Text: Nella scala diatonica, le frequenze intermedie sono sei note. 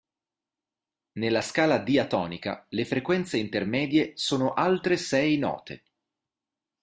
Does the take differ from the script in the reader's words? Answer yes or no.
yes